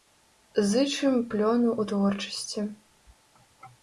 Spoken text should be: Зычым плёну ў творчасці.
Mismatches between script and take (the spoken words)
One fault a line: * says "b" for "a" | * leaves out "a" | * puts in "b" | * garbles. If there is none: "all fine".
all fine